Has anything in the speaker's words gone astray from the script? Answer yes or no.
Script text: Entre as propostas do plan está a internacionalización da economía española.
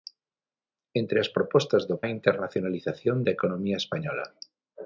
yes